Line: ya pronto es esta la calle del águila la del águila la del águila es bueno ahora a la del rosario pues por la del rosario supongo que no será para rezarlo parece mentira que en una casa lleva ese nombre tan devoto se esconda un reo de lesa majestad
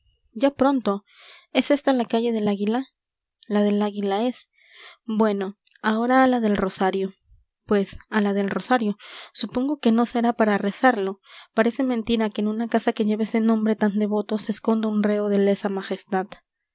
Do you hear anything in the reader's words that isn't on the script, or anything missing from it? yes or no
yes